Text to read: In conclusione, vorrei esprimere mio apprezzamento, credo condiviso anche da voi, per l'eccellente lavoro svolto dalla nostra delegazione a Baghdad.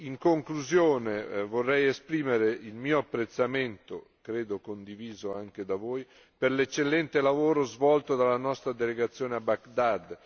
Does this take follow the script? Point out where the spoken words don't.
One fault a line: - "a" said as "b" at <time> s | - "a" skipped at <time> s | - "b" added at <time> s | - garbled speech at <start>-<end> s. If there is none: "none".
- "il" added at 2.5 s